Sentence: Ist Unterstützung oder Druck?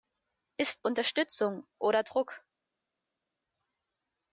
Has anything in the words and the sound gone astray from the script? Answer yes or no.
no